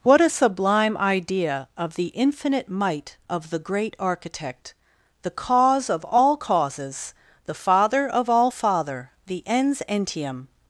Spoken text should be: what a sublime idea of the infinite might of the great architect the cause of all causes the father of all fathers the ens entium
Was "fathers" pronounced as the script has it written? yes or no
no